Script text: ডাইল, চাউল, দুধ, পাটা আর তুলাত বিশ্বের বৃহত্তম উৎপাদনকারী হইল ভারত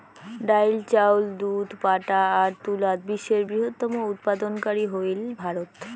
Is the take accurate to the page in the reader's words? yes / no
yes